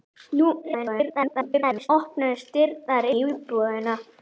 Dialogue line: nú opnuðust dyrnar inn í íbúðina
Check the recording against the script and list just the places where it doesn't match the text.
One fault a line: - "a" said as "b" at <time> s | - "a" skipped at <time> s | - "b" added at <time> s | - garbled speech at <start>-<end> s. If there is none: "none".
- garbled speech at 0.6-1.9 s
- "inn" skipped at 3.1 s